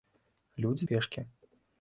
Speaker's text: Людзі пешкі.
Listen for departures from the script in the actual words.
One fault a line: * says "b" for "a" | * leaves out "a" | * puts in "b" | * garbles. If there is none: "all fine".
all fine